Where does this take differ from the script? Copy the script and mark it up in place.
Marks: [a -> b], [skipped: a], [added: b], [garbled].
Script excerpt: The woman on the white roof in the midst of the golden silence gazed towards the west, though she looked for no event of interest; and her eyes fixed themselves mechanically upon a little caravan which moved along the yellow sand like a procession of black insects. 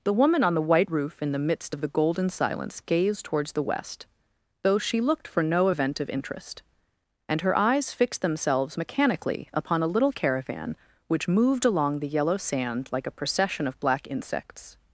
The woman on the white roof in the midst of the golden silence gazed towards the west, though she looked for no event of interest; and her eyes fixed themselves mechanically upon a little caravan which moved along the yellow sand like a procession of black insects.